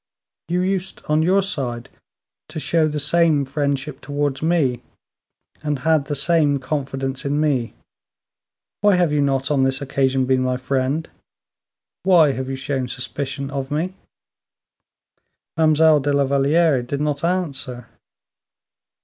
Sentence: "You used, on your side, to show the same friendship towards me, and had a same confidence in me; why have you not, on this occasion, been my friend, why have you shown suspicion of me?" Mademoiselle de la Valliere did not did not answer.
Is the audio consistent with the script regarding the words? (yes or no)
no